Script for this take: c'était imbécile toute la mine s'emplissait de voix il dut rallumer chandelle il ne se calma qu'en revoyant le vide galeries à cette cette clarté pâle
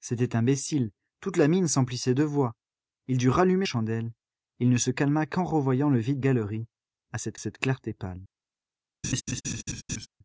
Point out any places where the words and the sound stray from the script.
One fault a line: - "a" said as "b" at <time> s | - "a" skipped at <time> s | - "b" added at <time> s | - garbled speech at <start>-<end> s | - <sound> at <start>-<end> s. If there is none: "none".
- laugh at 9.0-10.1 s